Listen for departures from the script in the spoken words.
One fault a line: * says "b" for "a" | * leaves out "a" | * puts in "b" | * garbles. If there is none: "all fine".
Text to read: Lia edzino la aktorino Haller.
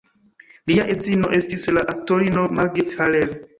* puts in "estis"
* puts in "Margit"